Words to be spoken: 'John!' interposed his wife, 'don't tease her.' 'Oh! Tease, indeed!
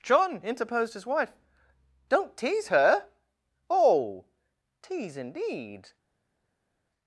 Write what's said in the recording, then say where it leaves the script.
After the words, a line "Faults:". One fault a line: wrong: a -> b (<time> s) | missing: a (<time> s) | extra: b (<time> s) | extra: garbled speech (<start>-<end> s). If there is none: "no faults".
'John!' interposed his wife, 'don't tease her.' 'Oh! Tease, indeed!
Faults:
no faults